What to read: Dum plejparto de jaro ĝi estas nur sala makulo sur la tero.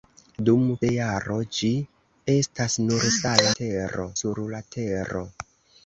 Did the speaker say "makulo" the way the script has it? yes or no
no